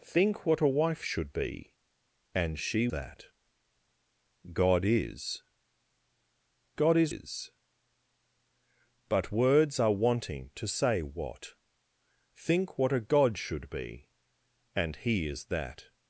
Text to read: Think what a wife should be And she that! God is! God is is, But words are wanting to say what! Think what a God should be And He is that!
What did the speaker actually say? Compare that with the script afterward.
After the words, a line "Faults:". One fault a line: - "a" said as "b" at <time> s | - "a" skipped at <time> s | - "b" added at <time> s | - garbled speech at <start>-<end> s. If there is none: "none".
Think what a wife should be And she that! God is! God is is, But words are wanting to say what! Think what a God should be And He is that!
Faults:
none